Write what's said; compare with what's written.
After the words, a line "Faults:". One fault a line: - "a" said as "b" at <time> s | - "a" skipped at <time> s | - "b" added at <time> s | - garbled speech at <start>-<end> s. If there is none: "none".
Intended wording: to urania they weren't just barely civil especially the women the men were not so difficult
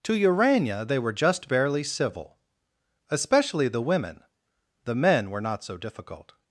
to urania they were just barely civil especially the women the men were not so difficult
Faults:
- "weren't" said as "were" at 1.0 s